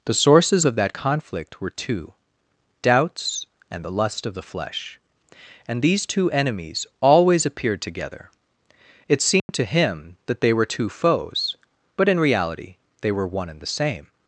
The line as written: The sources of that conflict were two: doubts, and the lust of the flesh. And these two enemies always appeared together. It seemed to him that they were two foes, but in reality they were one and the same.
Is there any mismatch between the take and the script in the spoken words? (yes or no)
no